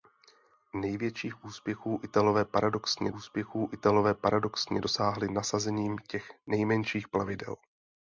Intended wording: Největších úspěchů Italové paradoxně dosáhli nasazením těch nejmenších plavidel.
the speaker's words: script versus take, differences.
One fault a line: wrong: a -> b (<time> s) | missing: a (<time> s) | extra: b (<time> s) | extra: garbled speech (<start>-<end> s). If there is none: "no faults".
extra: úspěchů Italové paradoxně (3.1 s)